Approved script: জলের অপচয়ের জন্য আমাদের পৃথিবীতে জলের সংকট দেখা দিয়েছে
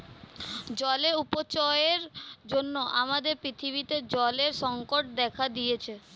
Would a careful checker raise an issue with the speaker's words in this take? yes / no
no